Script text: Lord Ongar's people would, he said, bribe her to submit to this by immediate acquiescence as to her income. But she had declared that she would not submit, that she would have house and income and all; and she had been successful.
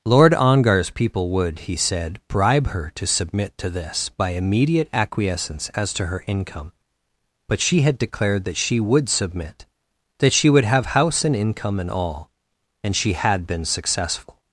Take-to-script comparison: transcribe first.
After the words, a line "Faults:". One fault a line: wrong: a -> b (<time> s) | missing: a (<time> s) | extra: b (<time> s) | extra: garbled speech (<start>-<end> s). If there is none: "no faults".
Lord Ongar's people would, he said, bribe her to submit to this by immediate acquiescence as to her income. But she had declared that she would submit, that she would have house and income and all; and she had been successful.
Faults:
missing: not (9.1 s)